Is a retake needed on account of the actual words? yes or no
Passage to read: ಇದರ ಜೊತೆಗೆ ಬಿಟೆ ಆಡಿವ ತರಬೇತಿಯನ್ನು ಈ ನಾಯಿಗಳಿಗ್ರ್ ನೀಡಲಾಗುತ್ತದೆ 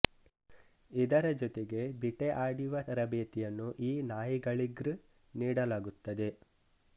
no